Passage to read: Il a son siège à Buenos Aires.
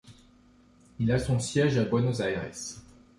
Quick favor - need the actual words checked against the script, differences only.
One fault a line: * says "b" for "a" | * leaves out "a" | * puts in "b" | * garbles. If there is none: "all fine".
all fine